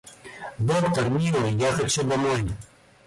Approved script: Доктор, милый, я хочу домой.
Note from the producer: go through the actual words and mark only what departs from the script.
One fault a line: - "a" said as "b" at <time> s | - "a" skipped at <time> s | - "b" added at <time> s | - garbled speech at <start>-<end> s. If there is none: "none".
none